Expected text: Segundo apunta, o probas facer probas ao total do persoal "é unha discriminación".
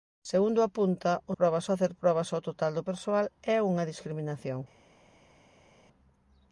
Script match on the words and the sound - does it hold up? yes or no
yes